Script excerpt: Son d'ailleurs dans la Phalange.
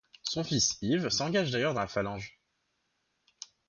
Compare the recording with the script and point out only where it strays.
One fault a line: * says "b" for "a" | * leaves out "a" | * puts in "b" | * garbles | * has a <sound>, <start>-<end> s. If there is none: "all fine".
* puts in "fils Yves s'engage"